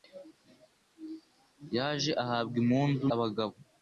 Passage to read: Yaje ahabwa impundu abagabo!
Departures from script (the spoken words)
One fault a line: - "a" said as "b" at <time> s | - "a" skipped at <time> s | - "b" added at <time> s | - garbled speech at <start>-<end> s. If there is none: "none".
none